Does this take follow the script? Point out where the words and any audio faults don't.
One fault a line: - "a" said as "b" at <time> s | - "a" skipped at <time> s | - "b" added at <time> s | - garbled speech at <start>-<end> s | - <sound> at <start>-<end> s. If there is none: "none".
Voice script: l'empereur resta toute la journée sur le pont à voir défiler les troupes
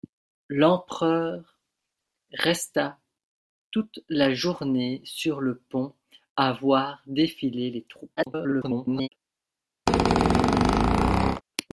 - garbled speech at 8.2-9.1 s
- squeak at 9.9-11.4 s